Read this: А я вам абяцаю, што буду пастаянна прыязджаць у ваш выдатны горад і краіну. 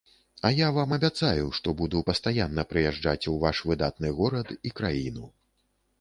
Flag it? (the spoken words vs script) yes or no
no